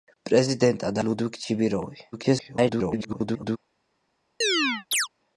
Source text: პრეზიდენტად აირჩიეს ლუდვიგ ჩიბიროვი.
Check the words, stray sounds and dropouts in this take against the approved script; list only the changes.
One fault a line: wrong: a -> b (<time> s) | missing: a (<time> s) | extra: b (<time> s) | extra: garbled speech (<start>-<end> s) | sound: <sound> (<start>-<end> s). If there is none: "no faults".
missing: აირჩიეს (1.0 s)
extra: garbled speech (2.1-3.6 s)
sound: chirp (4.4-5.1 s)